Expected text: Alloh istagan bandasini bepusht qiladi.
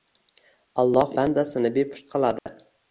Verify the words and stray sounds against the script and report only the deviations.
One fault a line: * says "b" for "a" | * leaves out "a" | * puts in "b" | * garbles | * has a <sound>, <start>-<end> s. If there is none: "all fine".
* leaves out "istagan"
* has a dropout, 2.4-2.5 s